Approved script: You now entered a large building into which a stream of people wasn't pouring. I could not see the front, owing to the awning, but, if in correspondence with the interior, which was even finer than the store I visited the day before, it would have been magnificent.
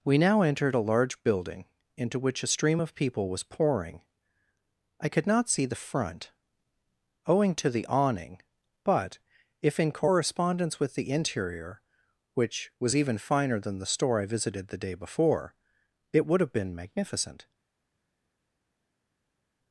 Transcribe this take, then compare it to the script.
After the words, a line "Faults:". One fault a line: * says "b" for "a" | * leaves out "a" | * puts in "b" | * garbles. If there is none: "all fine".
We now entered a large building into which a stream of people was pouring. I could not see the front, owing to the awning, but, if in correspondence with the interior, which was even finer than the store I visited the day before, it would have been magnificent.
Faults:
* says "We" for "You"
* says "was" for "wasn't"